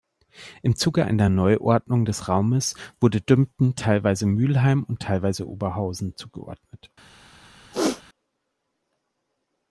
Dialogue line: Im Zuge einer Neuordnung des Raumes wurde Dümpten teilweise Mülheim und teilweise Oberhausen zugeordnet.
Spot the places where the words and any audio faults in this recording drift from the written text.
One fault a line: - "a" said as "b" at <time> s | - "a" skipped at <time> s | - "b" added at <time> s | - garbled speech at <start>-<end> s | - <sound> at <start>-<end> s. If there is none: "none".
- throat clearing at 7.7-8.0 s